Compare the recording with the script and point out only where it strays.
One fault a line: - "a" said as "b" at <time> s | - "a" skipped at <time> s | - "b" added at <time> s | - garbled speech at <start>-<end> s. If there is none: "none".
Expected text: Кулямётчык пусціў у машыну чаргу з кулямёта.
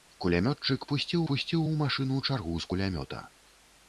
- "пусціў" added at 1.3 s